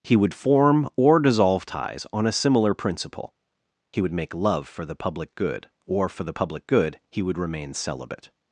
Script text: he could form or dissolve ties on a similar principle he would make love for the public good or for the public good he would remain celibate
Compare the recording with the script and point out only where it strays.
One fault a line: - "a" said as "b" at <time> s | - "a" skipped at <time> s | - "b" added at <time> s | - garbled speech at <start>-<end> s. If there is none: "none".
- "could" said as "would" at 0.1 s